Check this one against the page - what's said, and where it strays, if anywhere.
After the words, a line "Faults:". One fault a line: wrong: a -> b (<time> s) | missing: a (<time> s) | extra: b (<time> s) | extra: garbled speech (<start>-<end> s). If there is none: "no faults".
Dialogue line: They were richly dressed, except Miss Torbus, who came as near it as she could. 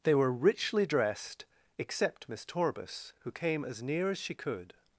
They were richly dressed, except Miss Torbus, who came as near as she could.
Faults:
missing: it (4.1 s)